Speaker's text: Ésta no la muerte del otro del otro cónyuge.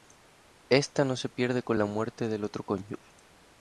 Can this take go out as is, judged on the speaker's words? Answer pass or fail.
fail